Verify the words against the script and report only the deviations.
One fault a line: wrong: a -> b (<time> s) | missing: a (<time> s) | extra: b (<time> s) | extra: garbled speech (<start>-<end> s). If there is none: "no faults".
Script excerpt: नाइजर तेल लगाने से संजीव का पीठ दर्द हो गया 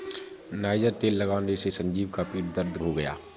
no faults